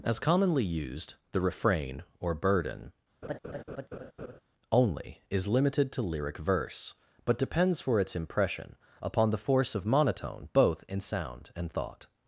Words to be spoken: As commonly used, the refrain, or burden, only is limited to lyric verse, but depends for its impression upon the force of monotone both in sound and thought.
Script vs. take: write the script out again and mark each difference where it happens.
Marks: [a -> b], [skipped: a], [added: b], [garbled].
As commonly used, the refrain, or burden, only is limited to lyric verse, but depends for its impression upon the force of monotone both in sound and thought.